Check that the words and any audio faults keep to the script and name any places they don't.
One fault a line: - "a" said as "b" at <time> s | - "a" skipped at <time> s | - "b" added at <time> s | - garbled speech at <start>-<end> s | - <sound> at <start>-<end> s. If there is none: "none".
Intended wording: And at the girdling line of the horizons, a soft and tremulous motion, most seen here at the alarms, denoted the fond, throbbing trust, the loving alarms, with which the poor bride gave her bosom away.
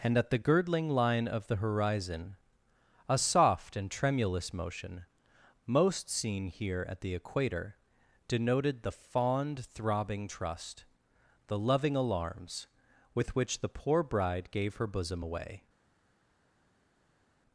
- "horizons" said as "horizon" at 1.6 s
- "alarms" said as "equator" at 7.1 s